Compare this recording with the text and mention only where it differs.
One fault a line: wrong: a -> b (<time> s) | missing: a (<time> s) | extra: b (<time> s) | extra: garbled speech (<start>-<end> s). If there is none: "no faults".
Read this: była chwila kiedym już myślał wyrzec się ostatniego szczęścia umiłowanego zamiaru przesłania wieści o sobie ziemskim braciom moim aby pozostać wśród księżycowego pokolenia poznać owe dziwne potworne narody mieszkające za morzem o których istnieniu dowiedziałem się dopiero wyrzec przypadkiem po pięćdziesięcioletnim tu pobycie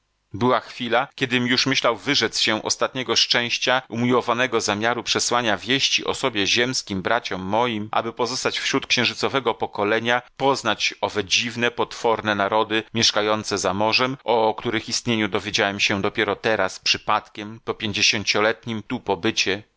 wrong: wyrzec -> teraz (16.4 s)